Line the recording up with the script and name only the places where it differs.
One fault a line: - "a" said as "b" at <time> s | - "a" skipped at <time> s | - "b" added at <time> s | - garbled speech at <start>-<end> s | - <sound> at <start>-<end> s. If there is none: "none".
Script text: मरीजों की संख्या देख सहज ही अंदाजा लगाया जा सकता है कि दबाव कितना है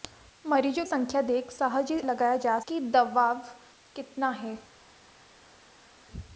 - "की" skipped at 0.8 s
- "अंदाजा" skipped at 2.0 s
- "सकता है" skipped at 2.6 s